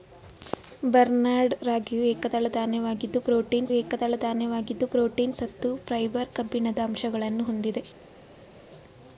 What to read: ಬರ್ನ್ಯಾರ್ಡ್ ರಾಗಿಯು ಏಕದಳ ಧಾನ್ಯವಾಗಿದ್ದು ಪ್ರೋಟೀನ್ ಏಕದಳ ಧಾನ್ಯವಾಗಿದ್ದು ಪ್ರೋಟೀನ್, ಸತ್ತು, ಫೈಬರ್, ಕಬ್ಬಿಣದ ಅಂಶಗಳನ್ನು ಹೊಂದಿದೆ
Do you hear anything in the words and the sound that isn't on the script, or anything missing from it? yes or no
no